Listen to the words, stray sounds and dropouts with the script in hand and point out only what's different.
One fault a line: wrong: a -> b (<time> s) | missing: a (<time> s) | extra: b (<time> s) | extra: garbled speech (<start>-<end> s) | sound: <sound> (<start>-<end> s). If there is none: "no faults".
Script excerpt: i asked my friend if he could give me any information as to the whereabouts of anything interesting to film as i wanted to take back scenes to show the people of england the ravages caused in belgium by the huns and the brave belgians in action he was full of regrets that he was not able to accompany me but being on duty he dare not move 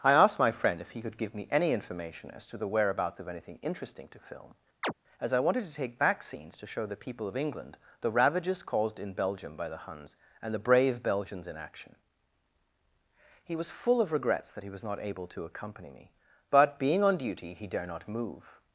sound: chirp (4.8-4.9 s)